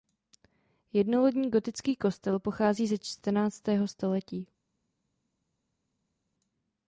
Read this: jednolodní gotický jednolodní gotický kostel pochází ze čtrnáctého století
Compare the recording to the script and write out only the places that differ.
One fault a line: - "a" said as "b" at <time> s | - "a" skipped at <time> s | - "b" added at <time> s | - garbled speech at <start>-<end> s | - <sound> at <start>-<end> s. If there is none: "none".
- "jednolodní gotický" skipped at 1.9 s